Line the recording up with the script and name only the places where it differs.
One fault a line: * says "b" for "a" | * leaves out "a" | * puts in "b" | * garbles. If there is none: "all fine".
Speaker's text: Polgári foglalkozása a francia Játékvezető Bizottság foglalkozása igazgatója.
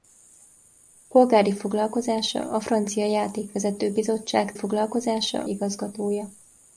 all fine